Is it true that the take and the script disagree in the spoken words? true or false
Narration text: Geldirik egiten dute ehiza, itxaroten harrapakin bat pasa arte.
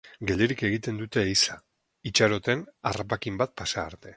false